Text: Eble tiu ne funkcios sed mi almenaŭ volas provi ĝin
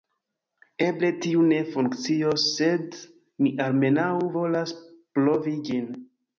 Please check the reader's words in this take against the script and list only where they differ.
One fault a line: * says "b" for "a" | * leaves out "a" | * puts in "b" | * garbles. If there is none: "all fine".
all fine